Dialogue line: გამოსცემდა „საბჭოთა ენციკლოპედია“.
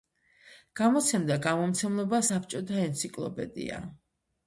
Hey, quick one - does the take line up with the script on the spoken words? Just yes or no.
no